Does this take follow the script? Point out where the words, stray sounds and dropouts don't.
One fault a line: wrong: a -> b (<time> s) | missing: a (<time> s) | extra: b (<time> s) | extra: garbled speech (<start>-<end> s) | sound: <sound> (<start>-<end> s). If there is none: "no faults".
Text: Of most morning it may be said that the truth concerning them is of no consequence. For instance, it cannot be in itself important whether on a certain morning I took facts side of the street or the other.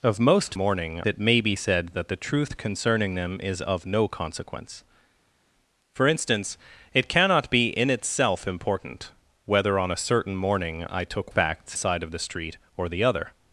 no faults